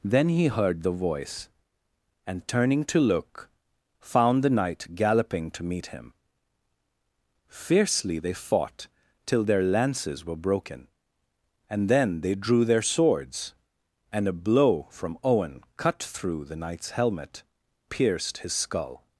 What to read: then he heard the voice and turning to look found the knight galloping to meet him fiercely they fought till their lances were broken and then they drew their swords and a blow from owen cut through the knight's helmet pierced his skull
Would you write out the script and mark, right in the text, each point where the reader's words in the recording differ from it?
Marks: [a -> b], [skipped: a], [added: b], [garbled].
then he heard the voice and turning to look found the knight galloping to meet him fiercely they fought till their lances were broken and then they drew their swords and a blow from owen cut through the knight's helmet pierced his skull